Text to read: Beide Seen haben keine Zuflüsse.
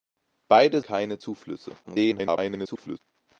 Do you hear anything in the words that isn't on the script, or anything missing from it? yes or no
yes